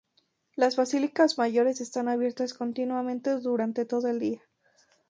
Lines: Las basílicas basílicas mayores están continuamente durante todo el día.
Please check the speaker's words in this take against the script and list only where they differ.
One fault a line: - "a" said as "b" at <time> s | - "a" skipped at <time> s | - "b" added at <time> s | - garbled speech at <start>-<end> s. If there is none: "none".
- "basílicas" skipped at 1.4 s
- "abiertas" added at 2.1 s